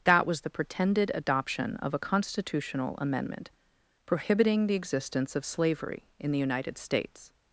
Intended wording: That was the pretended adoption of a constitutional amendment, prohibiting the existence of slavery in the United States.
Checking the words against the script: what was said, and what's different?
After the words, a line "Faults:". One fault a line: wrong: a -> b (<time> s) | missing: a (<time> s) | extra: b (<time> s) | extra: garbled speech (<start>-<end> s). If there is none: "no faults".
That was the pretended adoption of a constitutional amendment, prohibiting the existence of slavery in the United States.
Faults:
no faults